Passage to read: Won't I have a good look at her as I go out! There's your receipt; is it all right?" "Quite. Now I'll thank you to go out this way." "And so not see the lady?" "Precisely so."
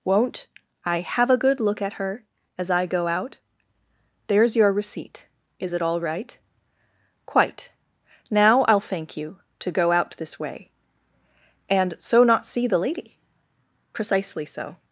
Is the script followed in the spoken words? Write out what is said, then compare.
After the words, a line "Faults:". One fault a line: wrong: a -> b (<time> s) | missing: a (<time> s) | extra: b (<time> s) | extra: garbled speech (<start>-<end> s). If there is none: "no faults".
Won't I have a good look at her as I go out! There's your receipt; is it all right?" "Quite. Now I'll thank you to go out this way." "And so not see the lady?" "Precisely so."
Faults:
no faults